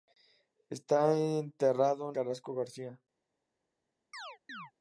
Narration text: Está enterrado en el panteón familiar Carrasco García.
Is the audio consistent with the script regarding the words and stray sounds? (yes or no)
no